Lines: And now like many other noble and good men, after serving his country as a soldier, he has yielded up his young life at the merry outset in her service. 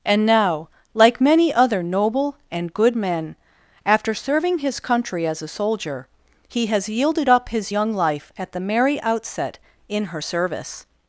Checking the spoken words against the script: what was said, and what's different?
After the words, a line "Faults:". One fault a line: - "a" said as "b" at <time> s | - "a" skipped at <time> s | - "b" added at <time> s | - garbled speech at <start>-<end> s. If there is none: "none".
And now like many other noble and good men, after serving his country as a soldier, he has yielded up his young life at the merry outset in her service.
Faults:
none